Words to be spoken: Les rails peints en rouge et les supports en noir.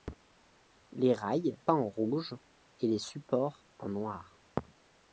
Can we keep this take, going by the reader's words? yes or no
yes